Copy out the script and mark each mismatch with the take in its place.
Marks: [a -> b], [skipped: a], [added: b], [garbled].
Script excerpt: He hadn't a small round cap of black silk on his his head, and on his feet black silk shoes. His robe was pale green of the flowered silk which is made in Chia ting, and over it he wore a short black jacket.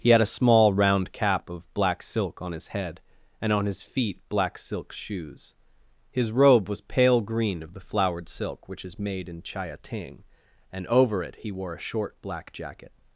He [hadn't -> had] a small round cap of black silk on his [skipped: his] head, and on his feet black silk shoes. His robe was pale green of the flowered silk which is made in Chia ting, and over it he wore a short black jacket.